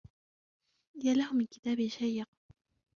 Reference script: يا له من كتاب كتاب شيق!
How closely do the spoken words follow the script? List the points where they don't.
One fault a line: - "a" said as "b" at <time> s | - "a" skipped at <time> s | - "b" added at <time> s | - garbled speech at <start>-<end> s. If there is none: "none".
- "كتاب" skipped at 1.9 s